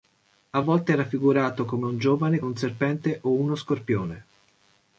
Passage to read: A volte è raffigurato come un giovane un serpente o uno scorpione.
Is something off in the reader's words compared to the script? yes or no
no